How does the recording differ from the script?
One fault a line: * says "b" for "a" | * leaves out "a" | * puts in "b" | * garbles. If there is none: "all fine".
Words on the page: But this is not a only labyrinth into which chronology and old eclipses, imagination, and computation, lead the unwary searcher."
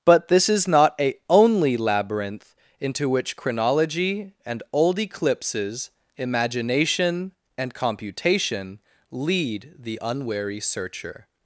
all fine